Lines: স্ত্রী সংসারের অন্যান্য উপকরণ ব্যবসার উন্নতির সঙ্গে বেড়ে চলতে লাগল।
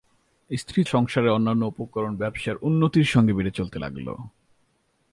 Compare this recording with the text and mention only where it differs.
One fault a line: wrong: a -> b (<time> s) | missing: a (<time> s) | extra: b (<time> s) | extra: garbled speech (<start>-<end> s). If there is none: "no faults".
no faults